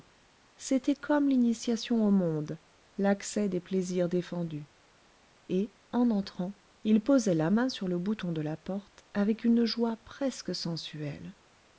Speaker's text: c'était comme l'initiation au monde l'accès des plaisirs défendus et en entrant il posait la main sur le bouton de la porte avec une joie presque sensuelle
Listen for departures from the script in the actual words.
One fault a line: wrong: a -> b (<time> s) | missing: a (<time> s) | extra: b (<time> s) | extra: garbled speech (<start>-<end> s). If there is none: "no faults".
no faults